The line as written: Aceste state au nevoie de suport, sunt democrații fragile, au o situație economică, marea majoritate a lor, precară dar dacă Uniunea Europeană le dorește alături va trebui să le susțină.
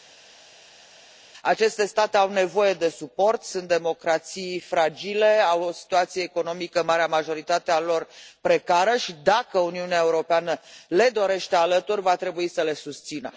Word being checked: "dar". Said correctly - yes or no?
no